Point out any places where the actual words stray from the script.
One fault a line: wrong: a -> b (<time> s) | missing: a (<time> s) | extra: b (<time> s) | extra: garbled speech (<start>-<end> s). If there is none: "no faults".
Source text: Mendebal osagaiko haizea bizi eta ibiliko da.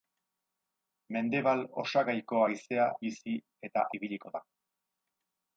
no faults